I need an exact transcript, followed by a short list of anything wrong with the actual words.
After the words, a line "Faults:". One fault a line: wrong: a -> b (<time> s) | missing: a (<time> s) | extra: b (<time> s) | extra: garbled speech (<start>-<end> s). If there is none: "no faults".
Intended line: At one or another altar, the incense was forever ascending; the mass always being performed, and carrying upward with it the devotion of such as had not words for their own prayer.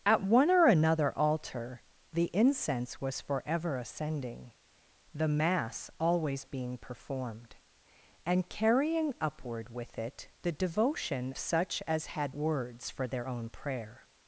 At one or another altar, the incense was forever ascending; the mass always being performed, and carrying upward with it the devotion such as had words for their own prayer.
Faults:
missing: of (11.3 s)
missing: not (12.3 s)